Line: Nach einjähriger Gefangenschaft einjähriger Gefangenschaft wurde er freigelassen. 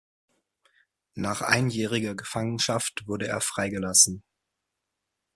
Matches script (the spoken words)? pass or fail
fail